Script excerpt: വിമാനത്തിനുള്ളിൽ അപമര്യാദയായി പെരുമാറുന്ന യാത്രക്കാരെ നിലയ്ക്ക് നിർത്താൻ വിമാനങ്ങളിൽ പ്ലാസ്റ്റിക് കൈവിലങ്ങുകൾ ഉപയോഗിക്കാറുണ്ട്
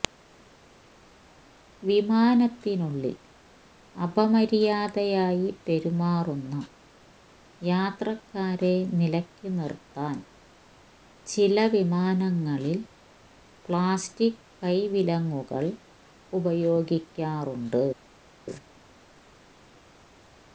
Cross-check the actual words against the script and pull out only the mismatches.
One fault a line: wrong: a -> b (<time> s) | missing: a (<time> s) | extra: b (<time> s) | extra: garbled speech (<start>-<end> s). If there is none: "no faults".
extra: ചില (11.3 s)